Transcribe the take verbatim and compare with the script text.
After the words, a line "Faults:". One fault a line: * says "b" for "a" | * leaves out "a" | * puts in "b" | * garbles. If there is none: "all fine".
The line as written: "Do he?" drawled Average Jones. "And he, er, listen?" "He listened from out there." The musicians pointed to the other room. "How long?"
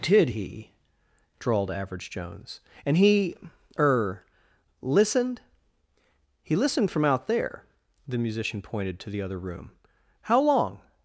"Did he?" drawled Average Jones. "And he, er, listened?" "He listened from out there." The musician pointed to the other room. "How long?"
Faults:
* says "Did" for "Do"
* says "listened" for "listen"
* says "musician" for "musicians"